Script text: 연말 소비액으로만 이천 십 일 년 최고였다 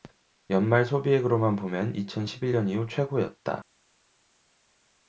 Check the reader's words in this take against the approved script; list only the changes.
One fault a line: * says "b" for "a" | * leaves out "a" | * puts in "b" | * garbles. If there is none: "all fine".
* puts in "보면"
* puts in "이후"